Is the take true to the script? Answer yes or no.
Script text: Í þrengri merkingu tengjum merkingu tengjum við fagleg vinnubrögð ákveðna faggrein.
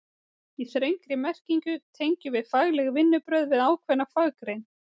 no